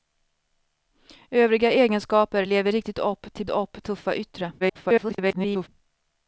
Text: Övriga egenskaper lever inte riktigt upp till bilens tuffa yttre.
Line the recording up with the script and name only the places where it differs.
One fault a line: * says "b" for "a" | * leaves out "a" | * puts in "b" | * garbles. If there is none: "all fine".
* leaves out "inte"
* says "upp" for "bilens"
* garbles